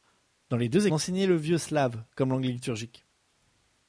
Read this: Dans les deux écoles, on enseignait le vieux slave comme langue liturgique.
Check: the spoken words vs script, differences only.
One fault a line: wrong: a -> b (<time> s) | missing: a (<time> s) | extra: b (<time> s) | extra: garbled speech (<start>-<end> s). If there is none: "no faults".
missing: écoles on (0.9 s)